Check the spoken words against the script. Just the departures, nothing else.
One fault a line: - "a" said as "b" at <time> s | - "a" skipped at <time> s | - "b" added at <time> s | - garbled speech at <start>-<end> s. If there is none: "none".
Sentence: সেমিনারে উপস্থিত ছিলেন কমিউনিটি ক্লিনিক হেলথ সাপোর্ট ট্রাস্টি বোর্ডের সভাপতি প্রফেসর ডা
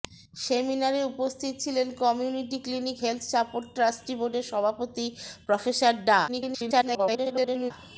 - garbled speech at 6.3-7.7 s